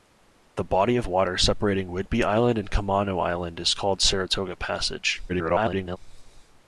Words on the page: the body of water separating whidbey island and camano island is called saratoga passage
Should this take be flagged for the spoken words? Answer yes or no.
yes